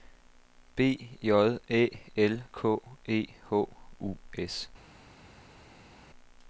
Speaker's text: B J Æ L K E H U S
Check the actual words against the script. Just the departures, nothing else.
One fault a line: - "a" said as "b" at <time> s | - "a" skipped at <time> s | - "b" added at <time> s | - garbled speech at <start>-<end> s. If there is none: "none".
none